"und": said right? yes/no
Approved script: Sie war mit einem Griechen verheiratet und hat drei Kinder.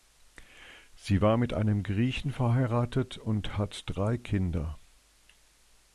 yes